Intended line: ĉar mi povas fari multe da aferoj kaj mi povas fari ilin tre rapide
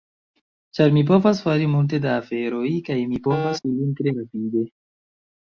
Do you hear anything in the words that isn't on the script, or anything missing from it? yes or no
yes